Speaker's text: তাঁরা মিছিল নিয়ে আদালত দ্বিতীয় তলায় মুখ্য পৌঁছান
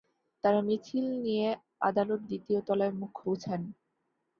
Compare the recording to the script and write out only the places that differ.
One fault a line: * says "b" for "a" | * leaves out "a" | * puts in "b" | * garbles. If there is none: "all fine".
all fine